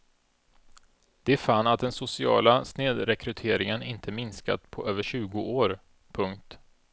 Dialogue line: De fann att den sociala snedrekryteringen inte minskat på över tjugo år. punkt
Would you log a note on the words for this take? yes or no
no